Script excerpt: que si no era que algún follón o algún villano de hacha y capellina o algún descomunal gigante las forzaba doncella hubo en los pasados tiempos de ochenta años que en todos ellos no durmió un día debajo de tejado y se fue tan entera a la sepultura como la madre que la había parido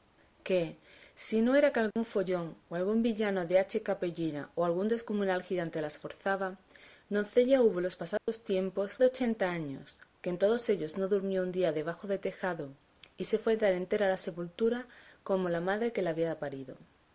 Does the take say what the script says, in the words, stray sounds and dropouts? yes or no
no